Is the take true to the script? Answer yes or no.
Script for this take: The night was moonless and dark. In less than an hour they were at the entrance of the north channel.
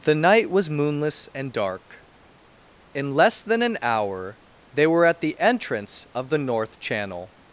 yes